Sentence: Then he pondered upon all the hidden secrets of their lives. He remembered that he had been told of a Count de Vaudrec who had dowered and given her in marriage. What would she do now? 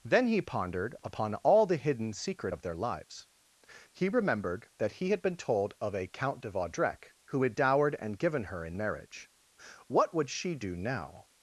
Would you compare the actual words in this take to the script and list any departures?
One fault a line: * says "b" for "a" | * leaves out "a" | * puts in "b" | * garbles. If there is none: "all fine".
* says "secret" for "secrets"